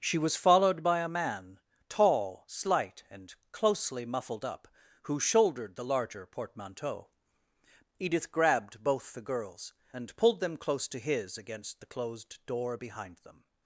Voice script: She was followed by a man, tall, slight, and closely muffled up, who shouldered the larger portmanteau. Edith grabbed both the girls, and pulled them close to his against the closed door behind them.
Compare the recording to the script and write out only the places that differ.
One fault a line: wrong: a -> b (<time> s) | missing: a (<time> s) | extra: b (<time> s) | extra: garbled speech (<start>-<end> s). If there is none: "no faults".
no faults